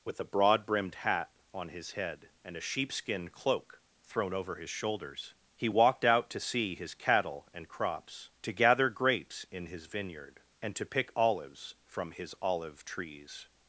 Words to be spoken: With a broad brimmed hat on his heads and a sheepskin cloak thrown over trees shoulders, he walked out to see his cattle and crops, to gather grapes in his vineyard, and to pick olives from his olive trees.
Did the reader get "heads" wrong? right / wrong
wrong